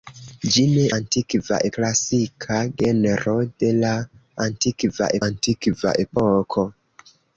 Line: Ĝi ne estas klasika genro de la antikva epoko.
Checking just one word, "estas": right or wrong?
wrong